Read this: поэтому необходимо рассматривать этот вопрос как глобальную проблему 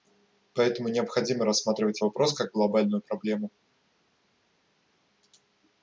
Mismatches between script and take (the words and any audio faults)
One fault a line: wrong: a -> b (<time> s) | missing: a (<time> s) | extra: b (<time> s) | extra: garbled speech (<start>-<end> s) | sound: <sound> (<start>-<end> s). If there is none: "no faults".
missing: этот (2.0 s)